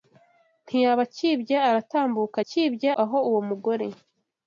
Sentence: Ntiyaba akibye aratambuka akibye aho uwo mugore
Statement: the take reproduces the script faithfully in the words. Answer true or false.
true